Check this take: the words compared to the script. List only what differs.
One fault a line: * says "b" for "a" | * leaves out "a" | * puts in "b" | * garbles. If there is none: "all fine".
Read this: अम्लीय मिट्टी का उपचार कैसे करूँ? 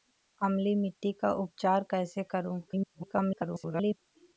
* garbles